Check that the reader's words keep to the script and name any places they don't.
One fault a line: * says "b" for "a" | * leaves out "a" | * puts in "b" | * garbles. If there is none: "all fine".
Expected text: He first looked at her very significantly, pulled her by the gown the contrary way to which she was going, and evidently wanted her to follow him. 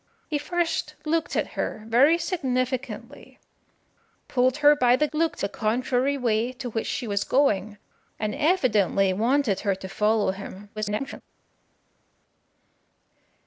* says "looked" for "gown"
* garbles